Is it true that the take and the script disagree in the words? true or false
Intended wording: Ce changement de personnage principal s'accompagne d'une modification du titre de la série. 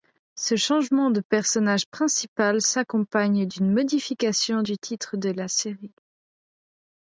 false